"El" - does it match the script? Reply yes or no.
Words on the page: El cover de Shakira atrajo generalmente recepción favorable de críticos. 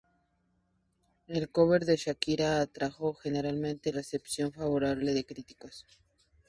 yes